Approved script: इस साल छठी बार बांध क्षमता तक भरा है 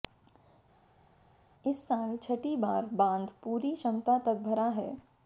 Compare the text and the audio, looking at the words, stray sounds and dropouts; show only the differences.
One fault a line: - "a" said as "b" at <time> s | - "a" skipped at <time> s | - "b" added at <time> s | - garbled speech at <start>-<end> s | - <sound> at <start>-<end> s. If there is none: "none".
- "पूरी" added at 3.4 s